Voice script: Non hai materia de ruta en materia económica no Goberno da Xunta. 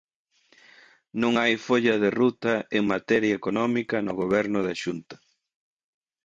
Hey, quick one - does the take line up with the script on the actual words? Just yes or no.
no